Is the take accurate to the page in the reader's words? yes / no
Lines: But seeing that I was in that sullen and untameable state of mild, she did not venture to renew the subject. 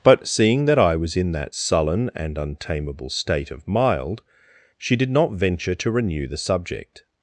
yes